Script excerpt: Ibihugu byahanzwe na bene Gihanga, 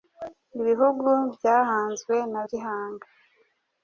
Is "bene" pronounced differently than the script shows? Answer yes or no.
yes